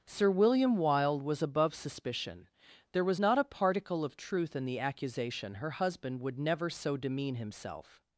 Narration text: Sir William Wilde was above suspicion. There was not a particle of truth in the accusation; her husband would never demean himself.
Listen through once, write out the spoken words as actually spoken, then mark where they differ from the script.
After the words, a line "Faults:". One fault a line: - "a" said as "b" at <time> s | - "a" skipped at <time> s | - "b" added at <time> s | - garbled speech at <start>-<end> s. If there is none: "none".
Sir William Wilde was above suspicion. There was not a particle of truth in the accusation; her husband would never so demean himself.
Faults:
- "so" added at 6.7 s